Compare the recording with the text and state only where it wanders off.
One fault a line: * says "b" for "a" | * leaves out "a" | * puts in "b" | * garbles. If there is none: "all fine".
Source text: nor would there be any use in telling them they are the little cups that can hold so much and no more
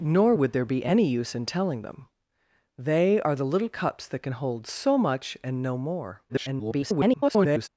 * garbles